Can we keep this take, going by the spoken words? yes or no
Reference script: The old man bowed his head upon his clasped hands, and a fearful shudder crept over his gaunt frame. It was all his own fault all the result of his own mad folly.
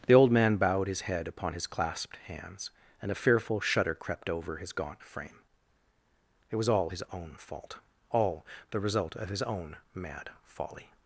yes